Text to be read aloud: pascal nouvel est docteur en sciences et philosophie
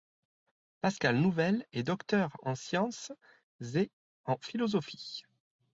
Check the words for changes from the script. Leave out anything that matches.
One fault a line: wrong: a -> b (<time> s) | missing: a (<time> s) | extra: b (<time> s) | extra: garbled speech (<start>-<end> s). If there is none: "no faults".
extra: en (4.2 s)